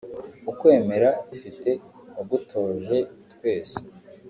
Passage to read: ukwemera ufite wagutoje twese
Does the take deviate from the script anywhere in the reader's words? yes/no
no